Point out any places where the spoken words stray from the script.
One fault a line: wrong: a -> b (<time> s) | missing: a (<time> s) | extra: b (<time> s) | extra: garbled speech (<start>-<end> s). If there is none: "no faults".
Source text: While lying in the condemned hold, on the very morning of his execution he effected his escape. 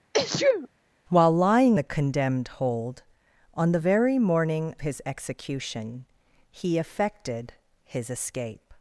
missing: in (1.8 s)
missing: of (4.8 s)